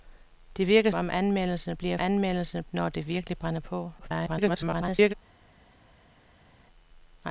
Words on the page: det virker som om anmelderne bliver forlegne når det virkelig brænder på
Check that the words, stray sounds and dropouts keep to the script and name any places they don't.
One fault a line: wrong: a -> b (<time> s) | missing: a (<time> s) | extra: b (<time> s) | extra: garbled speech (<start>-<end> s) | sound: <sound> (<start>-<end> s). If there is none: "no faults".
missing: som (0.9 s)
wrong: forlegne -> anmelderne (2.0 s)
extra: garbled speech (4.0-5.1 s)